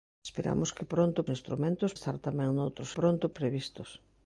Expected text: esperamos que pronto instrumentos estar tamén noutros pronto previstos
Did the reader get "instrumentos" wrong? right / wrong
right